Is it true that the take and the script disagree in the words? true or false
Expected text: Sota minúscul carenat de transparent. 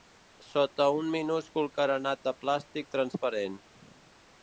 true